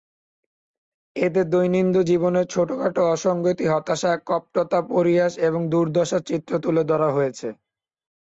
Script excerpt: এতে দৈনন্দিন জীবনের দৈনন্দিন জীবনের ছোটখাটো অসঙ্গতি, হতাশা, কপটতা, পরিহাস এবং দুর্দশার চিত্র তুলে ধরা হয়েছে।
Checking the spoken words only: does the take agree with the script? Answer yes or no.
no